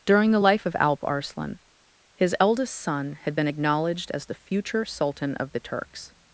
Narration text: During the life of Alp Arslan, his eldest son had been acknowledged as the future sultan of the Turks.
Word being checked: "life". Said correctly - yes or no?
yes